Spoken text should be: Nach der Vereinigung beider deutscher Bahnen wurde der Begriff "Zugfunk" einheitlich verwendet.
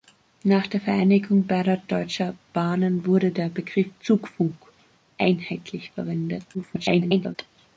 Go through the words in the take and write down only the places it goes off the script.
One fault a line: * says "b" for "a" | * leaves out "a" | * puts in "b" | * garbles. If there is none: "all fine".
* garbles